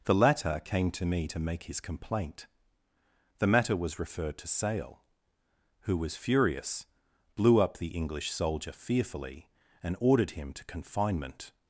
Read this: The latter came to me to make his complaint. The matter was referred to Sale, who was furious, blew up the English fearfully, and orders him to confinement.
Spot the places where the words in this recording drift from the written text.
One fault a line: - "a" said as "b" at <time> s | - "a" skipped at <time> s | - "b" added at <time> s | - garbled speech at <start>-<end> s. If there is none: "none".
- "soldier" added at 8.3 s
- "orders" said as "ordered" at 10.0 s